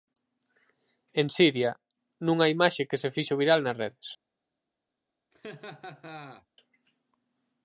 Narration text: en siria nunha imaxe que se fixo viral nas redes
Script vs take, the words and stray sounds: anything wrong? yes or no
yes